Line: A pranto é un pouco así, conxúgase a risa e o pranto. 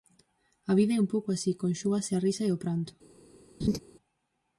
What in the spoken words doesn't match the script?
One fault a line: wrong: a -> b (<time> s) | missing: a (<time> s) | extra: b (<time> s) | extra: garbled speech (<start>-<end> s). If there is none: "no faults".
wrong: pranto -> vida (0.8 s)